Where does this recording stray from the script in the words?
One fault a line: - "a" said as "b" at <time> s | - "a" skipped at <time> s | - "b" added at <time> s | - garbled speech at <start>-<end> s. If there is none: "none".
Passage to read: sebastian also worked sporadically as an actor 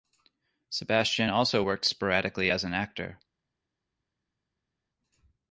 none